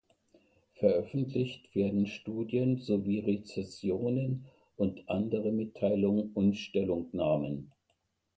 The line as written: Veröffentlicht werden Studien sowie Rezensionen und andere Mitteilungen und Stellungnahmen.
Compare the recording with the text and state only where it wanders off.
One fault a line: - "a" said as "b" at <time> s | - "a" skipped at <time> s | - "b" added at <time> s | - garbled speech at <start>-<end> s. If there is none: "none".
none